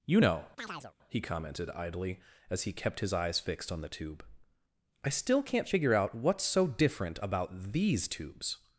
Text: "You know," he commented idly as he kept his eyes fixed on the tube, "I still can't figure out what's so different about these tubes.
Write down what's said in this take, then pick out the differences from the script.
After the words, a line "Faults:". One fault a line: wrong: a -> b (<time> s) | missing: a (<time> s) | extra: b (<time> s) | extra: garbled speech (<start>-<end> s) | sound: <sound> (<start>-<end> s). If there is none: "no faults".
"You know," he commented idly as he kept his eyes fixed on the tube, "I still can't figure out what's so different about these tubes.
Faults:
sound: chirp (0.6-0.9 s)